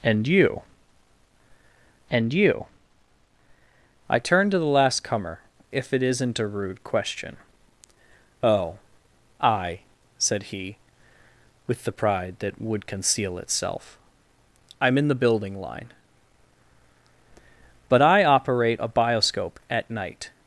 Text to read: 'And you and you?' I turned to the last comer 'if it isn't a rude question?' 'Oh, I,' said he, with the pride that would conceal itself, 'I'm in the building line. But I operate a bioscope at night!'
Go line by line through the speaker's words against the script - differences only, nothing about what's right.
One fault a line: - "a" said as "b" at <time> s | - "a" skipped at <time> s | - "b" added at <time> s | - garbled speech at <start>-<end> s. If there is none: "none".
none